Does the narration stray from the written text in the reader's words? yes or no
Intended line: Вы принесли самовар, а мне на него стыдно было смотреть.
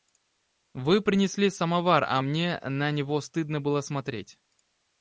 no